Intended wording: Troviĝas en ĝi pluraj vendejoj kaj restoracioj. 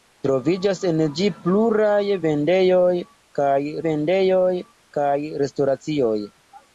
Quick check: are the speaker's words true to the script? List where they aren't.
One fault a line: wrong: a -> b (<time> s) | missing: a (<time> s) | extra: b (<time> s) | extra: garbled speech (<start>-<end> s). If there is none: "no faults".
extra: vendejoj kaj (3.9 s)